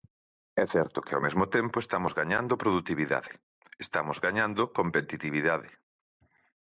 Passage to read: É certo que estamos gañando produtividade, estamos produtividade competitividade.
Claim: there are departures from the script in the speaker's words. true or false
true